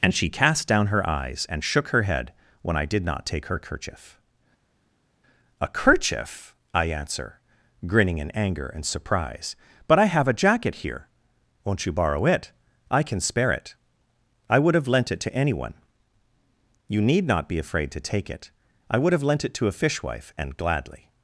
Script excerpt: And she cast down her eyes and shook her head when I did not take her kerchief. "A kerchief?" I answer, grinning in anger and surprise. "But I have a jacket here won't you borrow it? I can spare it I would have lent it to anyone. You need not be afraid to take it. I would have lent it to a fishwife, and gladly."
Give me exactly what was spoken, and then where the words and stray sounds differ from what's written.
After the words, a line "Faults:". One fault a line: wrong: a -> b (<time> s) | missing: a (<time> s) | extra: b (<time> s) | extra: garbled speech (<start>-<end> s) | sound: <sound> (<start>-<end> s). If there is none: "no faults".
And she cast down her eyes and shook her head when I did not take her kerchief. "A kerchief?" I answer, grinning in anger and surprise. "But I have a jacket here won't you borrow it? I can spare it I would have lent it to anyone. You need not be afraid to take it. I would have lent it to a fishwife, and gladly."
Faults:
no faults